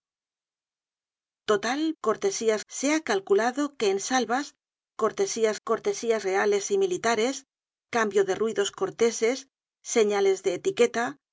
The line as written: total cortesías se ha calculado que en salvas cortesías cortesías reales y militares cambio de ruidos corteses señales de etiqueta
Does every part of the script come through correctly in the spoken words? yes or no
yes